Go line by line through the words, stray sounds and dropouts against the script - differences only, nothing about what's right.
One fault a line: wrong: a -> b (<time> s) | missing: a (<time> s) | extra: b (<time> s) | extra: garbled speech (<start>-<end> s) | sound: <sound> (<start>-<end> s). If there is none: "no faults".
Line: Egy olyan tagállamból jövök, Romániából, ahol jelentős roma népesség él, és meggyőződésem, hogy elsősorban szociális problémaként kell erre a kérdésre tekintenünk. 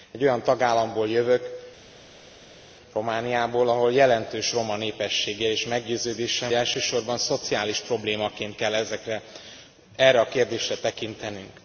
missing: hogy (6.5 s)